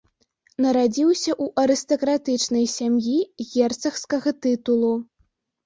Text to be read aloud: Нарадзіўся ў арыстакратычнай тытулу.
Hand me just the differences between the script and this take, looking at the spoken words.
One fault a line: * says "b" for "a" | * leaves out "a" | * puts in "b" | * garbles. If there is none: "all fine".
* puts in "сям'і герцагскага"